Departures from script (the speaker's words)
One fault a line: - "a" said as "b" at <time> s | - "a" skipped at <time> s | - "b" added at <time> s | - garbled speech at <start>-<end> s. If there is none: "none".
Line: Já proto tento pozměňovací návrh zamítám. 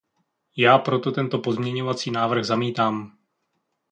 none